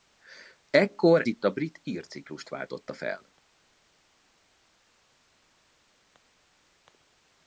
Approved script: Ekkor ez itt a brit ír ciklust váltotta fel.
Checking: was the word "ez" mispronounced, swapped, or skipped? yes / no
yes